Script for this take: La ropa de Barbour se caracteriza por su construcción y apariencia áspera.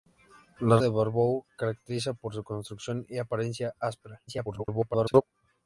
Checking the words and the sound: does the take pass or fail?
fail